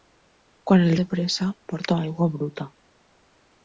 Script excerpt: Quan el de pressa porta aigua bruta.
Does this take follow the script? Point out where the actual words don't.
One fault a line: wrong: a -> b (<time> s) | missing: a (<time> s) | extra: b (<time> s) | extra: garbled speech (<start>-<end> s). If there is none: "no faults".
no faults